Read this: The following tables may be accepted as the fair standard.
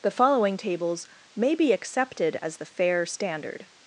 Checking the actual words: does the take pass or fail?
pass